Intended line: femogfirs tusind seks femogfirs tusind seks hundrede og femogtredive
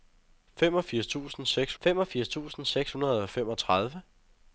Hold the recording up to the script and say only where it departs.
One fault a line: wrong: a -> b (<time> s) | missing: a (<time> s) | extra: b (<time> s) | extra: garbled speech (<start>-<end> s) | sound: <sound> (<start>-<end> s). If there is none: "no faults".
no faults